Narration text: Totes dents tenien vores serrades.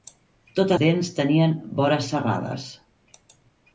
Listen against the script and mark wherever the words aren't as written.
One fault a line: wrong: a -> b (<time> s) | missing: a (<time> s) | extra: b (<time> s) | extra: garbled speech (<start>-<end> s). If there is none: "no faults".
no faults